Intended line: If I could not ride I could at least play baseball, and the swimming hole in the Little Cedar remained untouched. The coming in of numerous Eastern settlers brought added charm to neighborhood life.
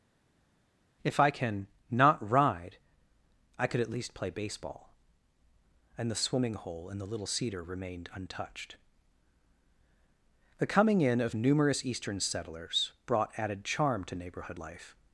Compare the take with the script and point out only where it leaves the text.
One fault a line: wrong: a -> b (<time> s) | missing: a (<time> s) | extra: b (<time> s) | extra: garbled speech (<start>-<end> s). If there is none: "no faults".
wrong: could -> can (1.3 s)